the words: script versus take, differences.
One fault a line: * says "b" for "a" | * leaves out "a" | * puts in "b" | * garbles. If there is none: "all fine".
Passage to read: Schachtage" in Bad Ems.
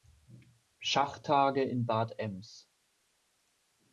all fine